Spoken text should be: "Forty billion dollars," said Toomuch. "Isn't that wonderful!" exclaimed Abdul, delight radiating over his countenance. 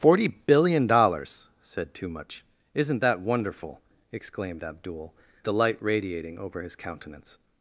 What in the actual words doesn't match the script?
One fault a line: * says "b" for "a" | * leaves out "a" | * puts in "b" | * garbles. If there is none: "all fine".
all fine